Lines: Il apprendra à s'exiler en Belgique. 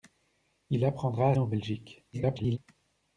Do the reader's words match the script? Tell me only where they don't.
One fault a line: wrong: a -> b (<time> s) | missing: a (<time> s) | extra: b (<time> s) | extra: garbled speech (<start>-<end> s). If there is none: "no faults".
missing: s'exiler (1.4 s)
extra: garbled speech (2.1-2.6 s)